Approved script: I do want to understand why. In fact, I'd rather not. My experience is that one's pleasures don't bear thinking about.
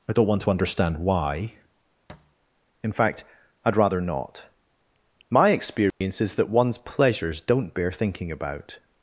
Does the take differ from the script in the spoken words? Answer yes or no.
yes